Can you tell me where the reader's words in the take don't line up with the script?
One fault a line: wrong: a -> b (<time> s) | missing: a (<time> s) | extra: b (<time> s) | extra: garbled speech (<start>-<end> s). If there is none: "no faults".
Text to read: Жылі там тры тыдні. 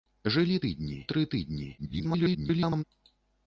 wrong: там -> тыдні (0.7 s)
extra: garbled speech (1.8-2.8 s)